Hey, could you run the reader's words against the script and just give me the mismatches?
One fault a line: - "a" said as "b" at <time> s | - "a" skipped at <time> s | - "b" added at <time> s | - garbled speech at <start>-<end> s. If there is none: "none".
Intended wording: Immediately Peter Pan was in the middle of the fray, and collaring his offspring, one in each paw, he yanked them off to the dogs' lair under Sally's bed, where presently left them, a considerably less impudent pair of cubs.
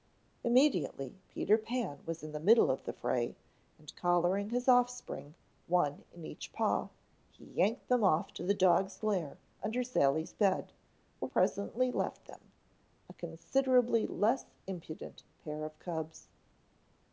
none